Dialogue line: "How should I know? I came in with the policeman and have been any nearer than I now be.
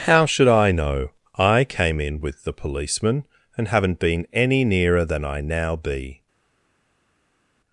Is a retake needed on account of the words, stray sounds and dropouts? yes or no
yes